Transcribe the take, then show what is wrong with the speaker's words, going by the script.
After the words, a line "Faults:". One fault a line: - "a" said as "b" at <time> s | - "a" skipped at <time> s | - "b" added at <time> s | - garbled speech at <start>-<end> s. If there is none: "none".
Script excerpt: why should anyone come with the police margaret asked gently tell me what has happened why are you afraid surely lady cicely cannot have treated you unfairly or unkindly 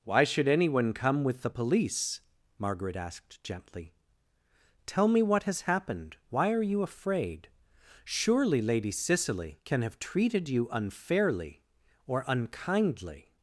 why should anyone come with the police margaret asked gently tell me what has happened why are you afraid surely lady cicely can have treated you unfairly or unkindly
Faults:
- "cannot" said as "can" at 9.6 s